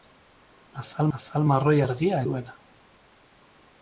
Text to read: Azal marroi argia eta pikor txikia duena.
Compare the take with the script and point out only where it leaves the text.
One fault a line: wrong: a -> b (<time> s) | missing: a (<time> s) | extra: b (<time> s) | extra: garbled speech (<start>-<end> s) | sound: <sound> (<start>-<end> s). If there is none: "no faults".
extra: azal (1.2 s)
missing: eta pikor txikia (2.2 s)